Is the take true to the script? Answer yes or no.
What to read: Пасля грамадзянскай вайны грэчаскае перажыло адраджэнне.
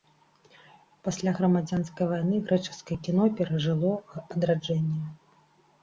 no